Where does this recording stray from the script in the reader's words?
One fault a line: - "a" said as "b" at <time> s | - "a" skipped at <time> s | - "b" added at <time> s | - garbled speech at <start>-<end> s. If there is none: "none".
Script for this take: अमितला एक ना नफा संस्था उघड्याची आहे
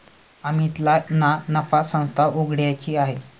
- "एक" skipped at 0.9 s